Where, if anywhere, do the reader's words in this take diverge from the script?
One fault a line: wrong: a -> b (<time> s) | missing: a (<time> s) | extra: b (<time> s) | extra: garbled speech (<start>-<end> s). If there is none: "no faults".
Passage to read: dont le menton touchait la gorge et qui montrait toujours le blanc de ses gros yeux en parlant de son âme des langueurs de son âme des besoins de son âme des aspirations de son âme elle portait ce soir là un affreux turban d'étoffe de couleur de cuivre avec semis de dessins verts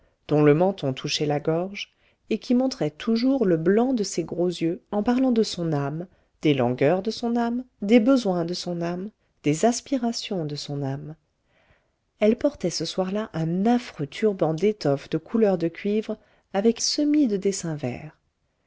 no faults